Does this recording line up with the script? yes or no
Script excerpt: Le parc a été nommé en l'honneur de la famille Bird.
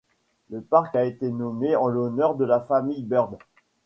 yes